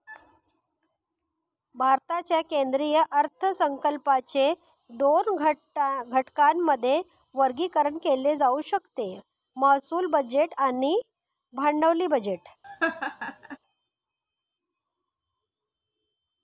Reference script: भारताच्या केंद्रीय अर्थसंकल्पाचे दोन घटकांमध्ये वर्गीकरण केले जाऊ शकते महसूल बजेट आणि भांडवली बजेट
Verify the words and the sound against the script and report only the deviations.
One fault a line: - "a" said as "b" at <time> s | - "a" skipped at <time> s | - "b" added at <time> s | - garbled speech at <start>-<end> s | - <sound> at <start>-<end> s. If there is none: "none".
- laugh at 12.6-13.6 s